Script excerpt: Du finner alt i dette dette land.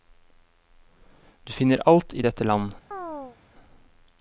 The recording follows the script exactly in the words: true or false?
false